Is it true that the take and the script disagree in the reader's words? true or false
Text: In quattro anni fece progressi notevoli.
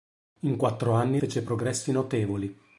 false